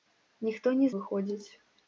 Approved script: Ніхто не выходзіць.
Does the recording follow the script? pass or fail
pass